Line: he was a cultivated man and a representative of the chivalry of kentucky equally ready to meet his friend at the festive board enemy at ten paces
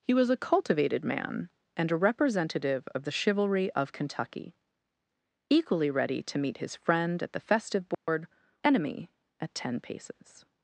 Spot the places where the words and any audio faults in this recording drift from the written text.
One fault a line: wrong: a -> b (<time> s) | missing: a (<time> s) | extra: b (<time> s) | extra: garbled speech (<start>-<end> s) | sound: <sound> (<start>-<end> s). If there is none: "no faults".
sound: dropout (7.9-8.1 s)